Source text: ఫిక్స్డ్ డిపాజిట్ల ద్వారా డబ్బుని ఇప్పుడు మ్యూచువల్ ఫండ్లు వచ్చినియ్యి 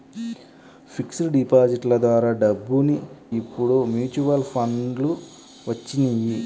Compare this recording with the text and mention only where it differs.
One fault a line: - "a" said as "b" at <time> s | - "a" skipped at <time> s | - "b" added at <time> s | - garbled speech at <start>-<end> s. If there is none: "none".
none